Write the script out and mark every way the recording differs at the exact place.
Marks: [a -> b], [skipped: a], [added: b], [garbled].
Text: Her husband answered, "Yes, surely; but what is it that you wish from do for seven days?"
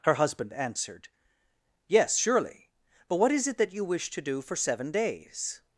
Her husband answered, "Yes, surely; but what is it that you wish [from -> to] do for seven days?"